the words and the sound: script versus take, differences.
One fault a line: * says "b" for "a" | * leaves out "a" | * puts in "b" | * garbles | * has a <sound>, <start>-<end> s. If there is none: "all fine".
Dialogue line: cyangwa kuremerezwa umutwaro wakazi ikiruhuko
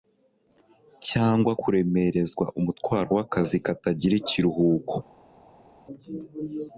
* puts in "katagira"